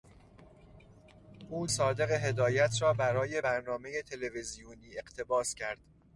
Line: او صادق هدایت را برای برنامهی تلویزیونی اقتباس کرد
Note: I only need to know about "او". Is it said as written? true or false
true